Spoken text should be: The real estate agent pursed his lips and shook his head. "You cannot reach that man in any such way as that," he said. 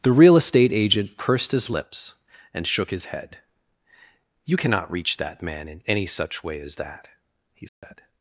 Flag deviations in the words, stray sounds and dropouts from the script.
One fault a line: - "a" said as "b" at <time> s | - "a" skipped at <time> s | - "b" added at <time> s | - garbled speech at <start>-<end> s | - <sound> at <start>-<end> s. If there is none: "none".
- dropout at 7.7-7.8 s